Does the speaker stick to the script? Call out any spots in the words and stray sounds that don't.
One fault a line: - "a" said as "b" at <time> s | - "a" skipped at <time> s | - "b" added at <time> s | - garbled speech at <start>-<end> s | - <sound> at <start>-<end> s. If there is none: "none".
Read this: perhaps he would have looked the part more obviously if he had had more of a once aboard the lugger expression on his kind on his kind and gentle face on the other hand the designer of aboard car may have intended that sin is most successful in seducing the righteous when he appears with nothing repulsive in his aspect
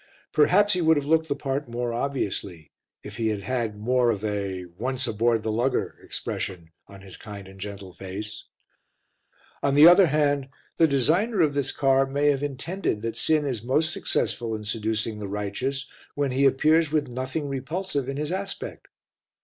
- "on his kind" skipped at 7.5 s
- "aboard" said as "this" at 11.5 s